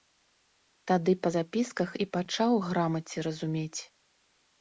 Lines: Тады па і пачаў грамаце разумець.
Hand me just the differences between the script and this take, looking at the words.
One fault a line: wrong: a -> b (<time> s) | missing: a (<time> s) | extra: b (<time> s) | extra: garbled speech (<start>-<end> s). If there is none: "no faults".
extra: запісках (1.3 s)